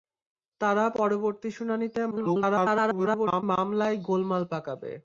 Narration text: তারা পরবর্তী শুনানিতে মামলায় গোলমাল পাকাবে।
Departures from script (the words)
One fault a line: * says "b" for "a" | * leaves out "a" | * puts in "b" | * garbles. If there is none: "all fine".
* garbles